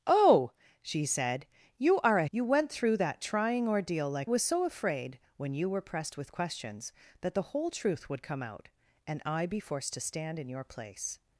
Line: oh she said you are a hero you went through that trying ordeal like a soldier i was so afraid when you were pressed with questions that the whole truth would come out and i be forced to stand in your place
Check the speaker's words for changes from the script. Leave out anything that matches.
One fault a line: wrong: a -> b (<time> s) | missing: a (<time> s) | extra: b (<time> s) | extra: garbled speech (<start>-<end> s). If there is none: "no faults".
missing: hero (2.2 s)
missing: a soldier i (4.3 s)